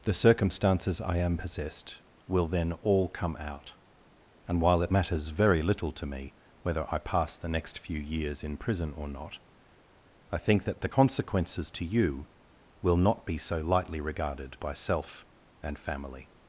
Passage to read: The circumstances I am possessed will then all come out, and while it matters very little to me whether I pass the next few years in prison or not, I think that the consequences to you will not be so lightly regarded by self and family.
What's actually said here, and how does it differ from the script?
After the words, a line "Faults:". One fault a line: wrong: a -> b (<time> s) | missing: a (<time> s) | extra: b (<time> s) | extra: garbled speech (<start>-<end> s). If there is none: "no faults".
The circumstances I am possessed will then all come out, and while it matters very little to me whether I pass the next few years in prison or not, I think that the consequences to you will not be so lightly regarded by self and family.
Faults:
no faults